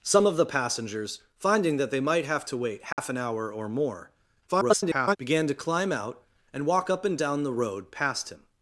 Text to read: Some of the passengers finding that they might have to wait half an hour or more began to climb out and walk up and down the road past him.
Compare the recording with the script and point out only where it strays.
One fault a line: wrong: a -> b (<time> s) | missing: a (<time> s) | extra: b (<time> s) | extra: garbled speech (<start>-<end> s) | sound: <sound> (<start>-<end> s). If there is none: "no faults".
sound: dropout (2.9-3.0 s)
extra: garbled speech (4.5-5.2 s)